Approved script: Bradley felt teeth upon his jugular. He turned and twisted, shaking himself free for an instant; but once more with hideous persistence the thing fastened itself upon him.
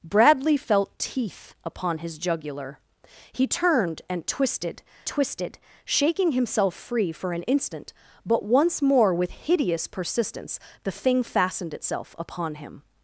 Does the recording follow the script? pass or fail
fail